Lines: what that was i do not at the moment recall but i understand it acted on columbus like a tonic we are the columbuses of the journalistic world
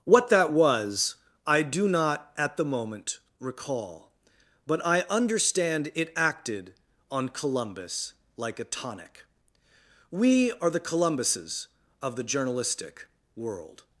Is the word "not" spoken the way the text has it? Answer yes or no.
yes